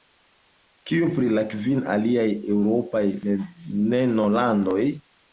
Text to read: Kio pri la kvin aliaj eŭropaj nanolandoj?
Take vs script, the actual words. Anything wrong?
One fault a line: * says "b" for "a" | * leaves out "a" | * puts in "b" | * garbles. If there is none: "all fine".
all fine